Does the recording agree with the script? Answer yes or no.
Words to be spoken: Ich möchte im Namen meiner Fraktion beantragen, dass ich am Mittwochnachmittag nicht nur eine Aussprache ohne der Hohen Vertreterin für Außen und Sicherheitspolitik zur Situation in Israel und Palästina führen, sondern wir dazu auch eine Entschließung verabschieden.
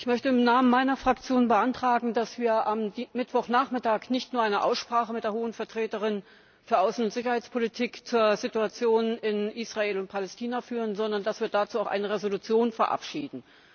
no